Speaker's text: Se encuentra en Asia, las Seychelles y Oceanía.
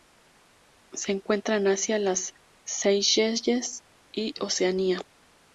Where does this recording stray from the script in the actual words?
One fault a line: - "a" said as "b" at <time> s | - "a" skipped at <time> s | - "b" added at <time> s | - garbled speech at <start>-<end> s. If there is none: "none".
none